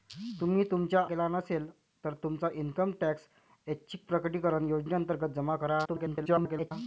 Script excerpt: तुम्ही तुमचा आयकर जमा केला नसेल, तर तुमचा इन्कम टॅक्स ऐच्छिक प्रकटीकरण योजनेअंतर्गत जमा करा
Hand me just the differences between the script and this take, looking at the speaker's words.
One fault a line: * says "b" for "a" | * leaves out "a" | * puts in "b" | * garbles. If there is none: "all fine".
* leaves out "आयकर जमा"
* garbles